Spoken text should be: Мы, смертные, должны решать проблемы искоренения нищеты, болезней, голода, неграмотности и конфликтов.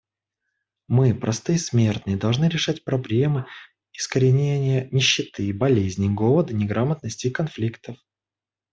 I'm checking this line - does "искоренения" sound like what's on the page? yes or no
yes